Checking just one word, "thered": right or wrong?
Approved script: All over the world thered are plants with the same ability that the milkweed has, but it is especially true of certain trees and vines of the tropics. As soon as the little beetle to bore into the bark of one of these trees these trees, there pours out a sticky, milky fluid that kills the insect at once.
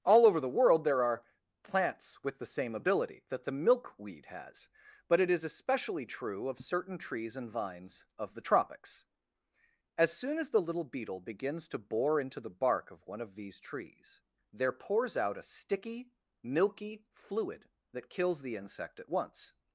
wrong